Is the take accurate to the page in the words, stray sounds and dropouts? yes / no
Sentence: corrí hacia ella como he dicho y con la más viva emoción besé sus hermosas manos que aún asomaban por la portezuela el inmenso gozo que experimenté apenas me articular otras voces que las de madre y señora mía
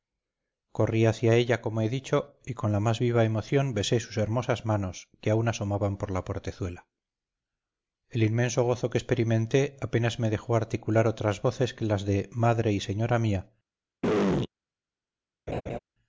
no